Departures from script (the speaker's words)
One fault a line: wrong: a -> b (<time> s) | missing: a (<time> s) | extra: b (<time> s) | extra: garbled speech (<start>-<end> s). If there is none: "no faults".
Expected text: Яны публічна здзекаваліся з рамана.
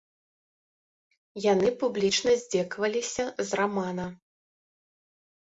no faults